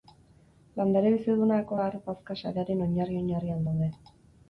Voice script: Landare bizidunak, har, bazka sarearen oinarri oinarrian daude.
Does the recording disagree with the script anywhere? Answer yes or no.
no